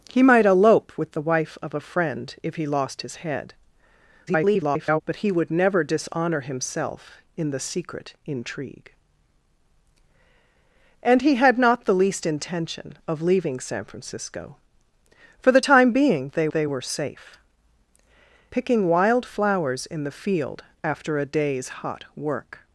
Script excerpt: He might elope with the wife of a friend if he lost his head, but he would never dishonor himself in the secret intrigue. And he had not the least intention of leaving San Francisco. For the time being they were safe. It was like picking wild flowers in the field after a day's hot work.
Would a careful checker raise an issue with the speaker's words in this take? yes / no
yes